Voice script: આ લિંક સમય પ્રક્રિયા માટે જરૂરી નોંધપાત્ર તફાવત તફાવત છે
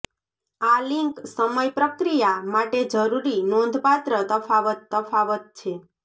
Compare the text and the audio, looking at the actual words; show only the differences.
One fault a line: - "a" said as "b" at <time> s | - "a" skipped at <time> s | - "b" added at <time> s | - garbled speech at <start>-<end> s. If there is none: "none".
none